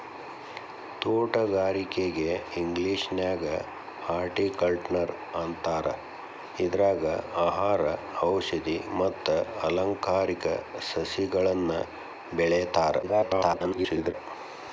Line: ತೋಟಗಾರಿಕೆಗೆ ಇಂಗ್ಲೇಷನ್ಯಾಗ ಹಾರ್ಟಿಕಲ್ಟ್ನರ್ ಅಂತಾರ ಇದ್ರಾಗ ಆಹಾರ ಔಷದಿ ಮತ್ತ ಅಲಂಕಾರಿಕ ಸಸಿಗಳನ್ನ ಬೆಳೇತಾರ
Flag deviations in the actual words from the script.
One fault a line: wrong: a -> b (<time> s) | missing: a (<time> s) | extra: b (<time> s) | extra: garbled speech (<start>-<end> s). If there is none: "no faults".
extra: garbled speech (13.0-14.1 s)